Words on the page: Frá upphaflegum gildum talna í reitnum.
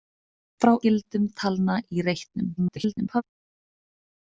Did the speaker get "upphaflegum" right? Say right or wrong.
wrong